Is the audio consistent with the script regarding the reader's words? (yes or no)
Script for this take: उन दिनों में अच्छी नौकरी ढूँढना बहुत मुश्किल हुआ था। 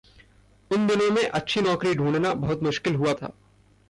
yes